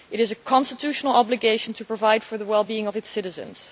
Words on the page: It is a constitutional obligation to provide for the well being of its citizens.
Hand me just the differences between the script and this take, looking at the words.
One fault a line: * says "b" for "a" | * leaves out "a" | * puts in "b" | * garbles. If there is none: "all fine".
all fine